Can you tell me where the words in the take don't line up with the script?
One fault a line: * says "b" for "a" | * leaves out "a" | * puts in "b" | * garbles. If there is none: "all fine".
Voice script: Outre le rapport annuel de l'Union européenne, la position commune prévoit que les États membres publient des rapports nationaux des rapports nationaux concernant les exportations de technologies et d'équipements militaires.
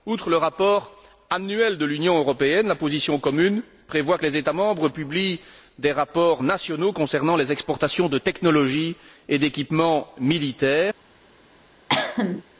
* leaves out "des rapports nationaux"